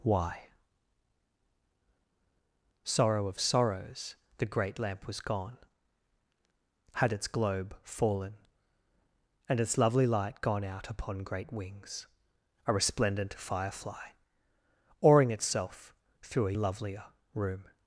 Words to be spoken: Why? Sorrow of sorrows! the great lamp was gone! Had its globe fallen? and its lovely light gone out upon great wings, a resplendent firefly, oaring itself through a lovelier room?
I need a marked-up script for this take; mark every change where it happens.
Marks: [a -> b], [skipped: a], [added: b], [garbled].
Why? Sorrow of sorrows! the great lamp was gone! Had its globe fallen? and its lovely light gone out upon great wings, a resplendent firefly, oaring itself through a lovelier room?